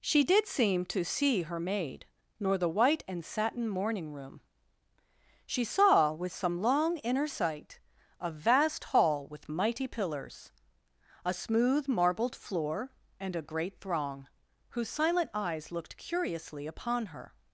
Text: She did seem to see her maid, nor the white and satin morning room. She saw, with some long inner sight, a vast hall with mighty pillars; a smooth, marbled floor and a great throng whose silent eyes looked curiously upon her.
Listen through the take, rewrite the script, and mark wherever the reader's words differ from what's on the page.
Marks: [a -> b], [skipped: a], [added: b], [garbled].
She did seem to see her maid, nor the white and satin morning room. She saw, with some long inner sight, a vast hall with mighty pillars; a smooth, marbled floor and a great throng whose silent eyes looked curiously upon her.